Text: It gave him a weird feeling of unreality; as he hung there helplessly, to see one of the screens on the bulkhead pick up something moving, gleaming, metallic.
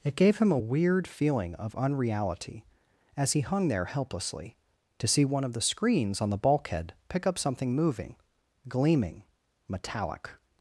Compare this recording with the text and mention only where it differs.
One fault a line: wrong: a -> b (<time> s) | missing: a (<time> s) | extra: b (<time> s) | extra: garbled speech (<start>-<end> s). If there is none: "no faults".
no faults